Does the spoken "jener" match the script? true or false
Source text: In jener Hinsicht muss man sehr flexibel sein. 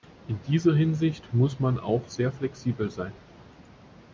false